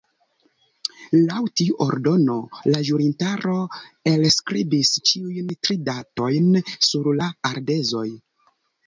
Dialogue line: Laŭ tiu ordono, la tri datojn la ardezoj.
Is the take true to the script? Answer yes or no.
no